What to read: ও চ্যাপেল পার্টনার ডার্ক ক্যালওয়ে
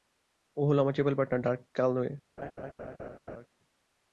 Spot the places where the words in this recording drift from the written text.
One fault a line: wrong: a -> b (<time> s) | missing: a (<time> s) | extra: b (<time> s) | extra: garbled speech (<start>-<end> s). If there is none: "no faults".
extra: হলো আমার (0.7 s)